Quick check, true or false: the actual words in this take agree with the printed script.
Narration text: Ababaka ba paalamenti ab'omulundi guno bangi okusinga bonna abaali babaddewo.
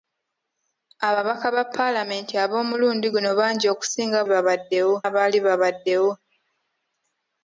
false